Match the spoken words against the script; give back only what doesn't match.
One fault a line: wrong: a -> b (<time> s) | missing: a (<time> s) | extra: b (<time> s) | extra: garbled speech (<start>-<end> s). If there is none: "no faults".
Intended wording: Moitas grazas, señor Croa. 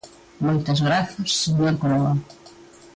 no faults